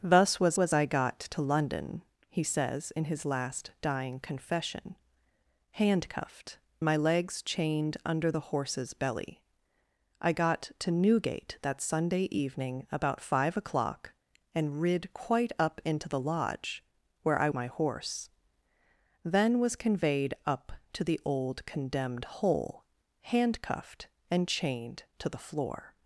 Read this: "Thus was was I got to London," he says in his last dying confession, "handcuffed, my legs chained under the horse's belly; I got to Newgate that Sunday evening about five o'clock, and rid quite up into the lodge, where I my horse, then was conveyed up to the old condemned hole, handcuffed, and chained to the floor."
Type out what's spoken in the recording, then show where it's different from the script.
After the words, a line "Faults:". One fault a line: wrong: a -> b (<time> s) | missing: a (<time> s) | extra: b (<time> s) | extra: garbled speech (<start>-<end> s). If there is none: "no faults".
"Thus was was I got to London," he says in his last dying confession, "handcuffed, my legs chained under the horse's belly; I got to Newgate that Sunday evening about five o'clock, and rid quite up into the lodge, where I my horse, then was conveyed up to the old condemned hole, handcuffed, and chained to the floor."
Faults:
no faults